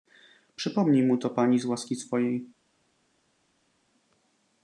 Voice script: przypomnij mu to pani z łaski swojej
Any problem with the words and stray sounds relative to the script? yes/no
no